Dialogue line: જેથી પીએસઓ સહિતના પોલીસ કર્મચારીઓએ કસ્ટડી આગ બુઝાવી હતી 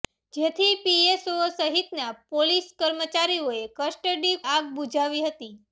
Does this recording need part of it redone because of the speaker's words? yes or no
no